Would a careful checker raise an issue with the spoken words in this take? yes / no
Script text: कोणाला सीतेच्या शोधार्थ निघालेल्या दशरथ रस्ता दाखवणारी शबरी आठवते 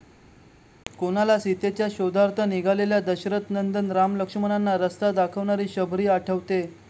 yes